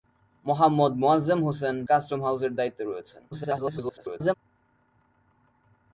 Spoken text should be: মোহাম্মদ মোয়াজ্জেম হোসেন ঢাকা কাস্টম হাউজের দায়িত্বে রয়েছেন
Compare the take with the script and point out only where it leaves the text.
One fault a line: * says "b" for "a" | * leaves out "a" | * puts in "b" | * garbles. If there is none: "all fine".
* leaves out "ঢাকা"
* garbles